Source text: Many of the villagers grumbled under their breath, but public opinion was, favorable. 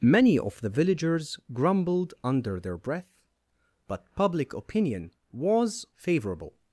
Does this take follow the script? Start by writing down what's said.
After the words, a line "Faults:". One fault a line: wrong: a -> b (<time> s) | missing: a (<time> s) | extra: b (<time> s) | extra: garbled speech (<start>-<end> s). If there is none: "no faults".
Many of the villagers grumbled under their breath, but public opinion was, favorable.
Faults:
no faults